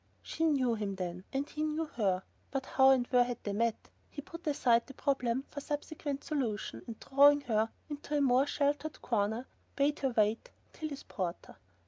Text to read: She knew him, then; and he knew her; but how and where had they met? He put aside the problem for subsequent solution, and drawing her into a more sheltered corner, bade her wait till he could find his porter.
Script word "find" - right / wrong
wrong